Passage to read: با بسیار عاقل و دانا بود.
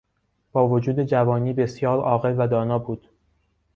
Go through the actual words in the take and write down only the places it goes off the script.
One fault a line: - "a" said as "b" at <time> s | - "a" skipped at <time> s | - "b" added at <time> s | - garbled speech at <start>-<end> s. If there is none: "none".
- "وجود جوانی" added at 0.7 s